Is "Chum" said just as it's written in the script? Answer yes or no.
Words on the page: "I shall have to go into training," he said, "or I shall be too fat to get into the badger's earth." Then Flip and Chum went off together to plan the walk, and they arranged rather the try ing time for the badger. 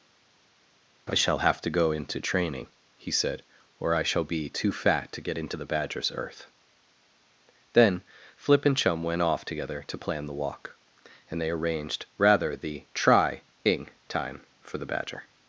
yes